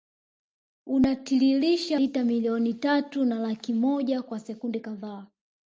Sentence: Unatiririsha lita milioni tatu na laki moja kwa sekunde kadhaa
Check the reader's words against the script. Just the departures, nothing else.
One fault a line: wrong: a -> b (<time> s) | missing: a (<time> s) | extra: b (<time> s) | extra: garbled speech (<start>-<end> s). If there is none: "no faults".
no faults